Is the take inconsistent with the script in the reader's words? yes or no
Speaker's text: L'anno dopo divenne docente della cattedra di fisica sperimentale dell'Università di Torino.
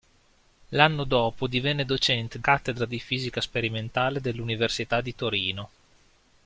yes